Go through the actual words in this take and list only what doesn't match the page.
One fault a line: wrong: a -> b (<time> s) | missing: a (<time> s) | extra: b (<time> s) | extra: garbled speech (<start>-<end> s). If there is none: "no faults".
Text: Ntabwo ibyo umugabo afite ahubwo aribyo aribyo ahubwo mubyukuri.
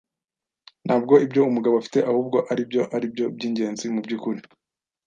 wrong: ahubwo -> byingenzi (3.4 s)